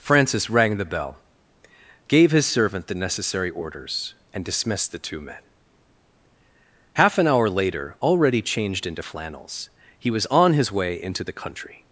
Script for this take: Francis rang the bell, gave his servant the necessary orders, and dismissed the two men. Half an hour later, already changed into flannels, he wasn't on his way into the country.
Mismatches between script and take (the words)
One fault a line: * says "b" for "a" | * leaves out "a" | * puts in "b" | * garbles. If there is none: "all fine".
* says "was" for "wasn't"